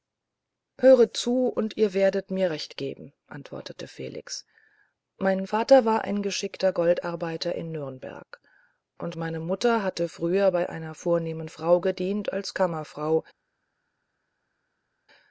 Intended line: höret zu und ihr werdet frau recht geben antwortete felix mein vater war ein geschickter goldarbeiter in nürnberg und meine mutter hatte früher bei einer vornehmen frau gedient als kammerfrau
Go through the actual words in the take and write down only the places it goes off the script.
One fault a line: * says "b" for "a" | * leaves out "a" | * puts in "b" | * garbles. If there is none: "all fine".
* says "mir" for "frau"